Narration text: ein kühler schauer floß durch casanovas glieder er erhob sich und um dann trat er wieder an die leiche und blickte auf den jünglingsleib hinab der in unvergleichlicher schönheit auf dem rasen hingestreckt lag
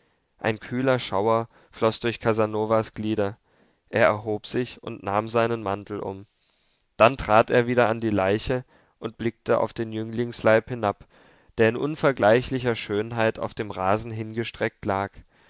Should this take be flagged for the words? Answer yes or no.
yes